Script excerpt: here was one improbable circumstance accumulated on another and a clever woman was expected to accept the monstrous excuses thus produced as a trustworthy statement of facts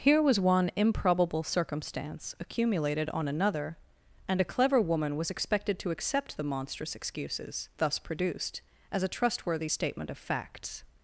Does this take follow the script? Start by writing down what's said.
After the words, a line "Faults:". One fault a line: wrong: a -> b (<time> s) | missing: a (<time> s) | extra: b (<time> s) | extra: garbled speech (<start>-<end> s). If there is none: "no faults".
here was one improbable circumstance accumulated on another and a clever woman was expected to accept the monstrous excuses thus produced as a trustworthy statement of facts
Faults:
no faults